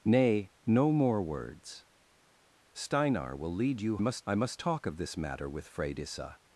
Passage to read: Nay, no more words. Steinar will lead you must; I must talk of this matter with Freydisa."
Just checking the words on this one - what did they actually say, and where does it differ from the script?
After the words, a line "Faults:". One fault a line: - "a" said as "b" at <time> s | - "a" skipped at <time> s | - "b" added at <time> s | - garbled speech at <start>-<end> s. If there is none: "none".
Nay, no more words. Steinar will lead you must; I must talk of this matter with Freydisa."
Faults:
none